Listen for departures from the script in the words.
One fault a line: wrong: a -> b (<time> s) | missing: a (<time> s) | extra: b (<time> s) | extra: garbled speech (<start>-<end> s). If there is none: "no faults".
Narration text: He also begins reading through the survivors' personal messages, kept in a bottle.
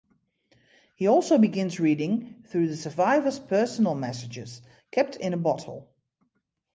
no faults